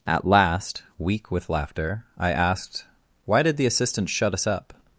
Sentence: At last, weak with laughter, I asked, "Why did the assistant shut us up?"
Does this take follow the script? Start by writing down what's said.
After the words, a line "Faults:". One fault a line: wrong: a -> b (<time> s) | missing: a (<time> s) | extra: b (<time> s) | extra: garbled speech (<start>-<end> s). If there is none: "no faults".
At last, weak with laughter, I asked, "Why did the assistant shut us up?"
Faults:
no faults